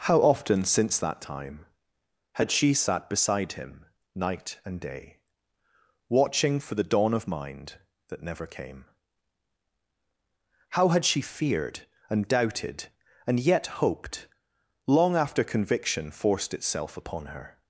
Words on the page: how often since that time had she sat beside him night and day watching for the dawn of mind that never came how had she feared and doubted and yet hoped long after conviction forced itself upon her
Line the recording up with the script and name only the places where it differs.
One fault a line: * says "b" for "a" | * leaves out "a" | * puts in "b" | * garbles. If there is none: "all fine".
all fine